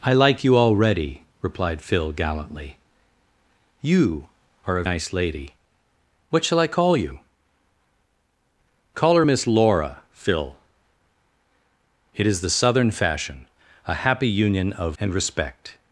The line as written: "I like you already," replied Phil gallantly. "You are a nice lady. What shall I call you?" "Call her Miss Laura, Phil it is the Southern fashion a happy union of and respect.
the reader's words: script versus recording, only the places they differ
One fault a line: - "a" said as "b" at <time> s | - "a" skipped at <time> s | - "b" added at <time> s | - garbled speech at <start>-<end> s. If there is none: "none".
none